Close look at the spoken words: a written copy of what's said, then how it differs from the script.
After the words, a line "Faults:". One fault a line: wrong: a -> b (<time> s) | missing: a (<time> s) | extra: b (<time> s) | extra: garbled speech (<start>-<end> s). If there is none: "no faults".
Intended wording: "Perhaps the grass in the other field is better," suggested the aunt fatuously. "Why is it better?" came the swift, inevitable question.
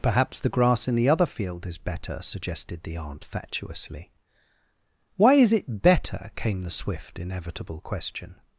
"Perhaps the grass in the other field is better," suggested the aunt fatuously. "Why is it better?" came the swift, inevitable question.
Faults:
no faults